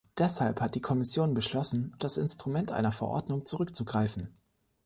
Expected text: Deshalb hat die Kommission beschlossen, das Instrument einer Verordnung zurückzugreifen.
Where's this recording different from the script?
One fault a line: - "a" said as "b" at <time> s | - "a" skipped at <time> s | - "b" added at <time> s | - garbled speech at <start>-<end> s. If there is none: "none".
none